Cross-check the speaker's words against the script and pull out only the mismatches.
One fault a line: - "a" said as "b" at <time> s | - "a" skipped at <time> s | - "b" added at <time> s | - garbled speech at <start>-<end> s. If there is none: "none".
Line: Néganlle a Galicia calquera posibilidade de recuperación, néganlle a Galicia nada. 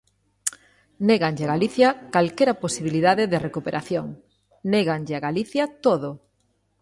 - "nada" said as "todo" at 5.9 s